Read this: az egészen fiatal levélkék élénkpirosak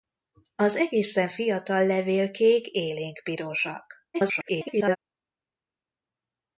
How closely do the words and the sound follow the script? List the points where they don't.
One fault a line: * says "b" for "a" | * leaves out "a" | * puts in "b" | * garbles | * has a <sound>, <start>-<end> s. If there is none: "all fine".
* garbles